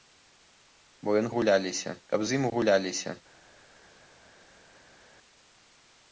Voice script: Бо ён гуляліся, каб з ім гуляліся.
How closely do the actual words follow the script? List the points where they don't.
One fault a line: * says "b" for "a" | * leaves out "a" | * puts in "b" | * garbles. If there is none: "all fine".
all fine